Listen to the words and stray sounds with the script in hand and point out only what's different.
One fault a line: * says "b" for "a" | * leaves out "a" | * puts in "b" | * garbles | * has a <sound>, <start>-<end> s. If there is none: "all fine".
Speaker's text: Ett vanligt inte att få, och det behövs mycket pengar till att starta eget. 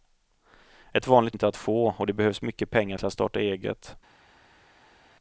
all fine